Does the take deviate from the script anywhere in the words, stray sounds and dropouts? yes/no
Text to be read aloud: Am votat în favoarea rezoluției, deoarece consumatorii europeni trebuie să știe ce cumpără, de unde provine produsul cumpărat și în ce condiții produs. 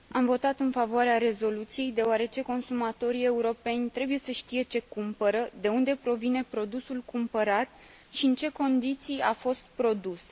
yes